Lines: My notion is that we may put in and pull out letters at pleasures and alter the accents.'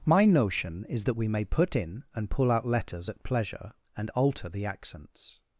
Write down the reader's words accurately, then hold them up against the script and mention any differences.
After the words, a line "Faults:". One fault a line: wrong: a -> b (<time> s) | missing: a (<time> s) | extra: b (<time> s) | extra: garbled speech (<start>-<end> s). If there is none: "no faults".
My notion is that we may put in and pull out letters at pleasure and alter the accents.'
Faults:
wrong: pleasures -> pleasure (3.2 s)